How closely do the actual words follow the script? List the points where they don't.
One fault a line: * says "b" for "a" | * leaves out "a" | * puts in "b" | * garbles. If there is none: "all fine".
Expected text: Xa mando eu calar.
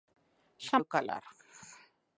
* leaves out "mando"